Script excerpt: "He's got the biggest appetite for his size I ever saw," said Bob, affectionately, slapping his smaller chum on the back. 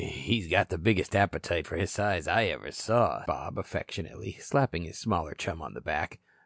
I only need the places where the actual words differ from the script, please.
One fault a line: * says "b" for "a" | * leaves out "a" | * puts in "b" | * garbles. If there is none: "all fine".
* leaves out "said"